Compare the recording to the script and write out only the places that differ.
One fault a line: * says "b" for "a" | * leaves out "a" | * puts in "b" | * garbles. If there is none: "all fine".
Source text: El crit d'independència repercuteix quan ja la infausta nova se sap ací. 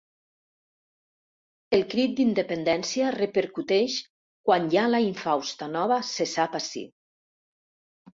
all fine